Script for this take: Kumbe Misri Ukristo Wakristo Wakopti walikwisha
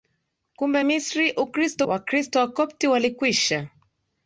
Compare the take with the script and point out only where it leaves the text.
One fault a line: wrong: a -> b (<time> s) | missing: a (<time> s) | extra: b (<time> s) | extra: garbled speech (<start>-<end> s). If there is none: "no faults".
no faults